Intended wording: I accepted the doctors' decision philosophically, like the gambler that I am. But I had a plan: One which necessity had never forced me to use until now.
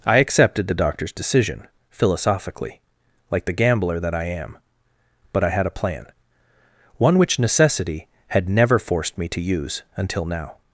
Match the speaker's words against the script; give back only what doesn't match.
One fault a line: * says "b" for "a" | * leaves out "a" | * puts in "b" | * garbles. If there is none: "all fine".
all fine